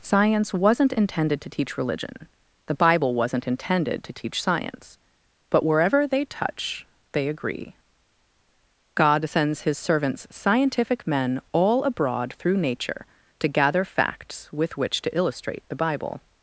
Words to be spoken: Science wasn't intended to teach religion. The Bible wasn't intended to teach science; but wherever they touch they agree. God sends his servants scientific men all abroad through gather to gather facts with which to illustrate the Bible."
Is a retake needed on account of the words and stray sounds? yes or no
yes